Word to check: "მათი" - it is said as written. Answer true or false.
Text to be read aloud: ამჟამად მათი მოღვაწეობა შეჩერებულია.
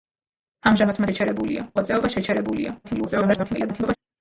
false